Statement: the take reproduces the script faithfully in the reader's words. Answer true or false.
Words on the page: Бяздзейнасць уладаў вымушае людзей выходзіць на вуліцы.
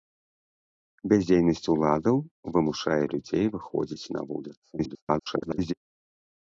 false